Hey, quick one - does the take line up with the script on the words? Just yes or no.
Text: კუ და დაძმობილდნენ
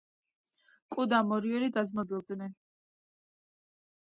no